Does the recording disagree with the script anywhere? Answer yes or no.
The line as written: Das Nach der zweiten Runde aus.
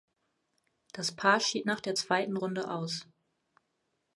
yes